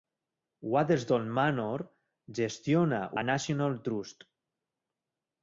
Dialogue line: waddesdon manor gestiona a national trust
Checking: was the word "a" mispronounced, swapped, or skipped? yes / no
no